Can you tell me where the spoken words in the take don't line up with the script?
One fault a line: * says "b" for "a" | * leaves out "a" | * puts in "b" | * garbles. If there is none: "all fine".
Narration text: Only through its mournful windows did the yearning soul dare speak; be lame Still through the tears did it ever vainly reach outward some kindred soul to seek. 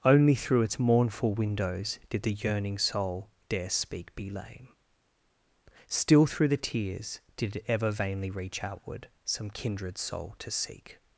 all fine